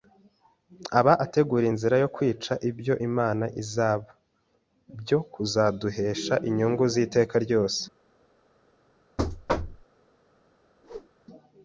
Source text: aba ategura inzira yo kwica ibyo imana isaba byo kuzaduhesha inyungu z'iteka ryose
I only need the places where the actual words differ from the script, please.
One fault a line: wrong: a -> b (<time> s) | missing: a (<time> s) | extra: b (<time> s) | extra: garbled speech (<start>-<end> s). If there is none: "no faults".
no faults